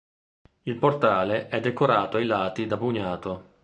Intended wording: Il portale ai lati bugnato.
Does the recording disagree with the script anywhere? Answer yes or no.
yes